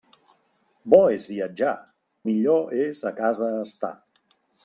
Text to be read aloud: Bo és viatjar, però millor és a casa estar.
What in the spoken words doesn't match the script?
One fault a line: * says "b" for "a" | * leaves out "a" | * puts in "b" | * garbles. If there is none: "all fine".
* leaves out "però"